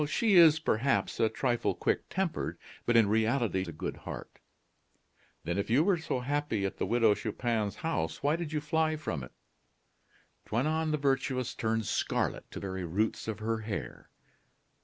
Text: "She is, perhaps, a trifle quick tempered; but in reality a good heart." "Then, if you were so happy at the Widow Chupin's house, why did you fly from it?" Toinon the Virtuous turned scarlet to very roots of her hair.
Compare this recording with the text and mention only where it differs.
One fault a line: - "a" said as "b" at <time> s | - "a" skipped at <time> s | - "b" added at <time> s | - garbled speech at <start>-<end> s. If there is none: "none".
none